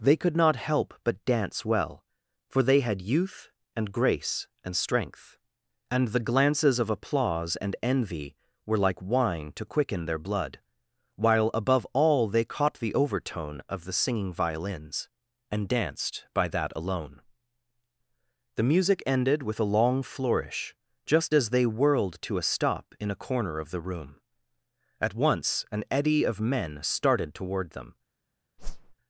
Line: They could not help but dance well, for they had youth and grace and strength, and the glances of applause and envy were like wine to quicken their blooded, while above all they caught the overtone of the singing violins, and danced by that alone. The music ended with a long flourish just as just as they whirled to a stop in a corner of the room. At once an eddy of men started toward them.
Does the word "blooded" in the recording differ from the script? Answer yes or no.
yes